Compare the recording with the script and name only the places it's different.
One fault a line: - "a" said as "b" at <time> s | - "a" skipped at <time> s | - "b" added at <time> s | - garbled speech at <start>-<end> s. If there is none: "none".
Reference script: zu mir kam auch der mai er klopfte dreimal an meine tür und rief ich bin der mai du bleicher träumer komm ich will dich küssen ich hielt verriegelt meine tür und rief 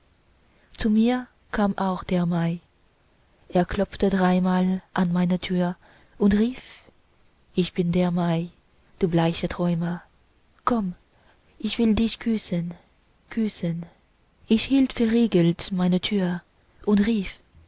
- "küssen" added at 13.3 s